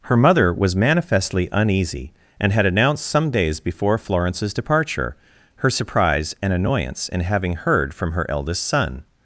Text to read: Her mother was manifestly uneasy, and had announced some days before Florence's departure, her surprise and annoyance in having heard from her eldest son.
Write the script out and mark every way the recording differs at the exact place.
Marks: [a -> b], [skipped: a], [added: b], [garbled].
Her mother was manifestly uneasy, and had announced some days before Florence's departure, her surprise and annoyance in having heard from her eldest son.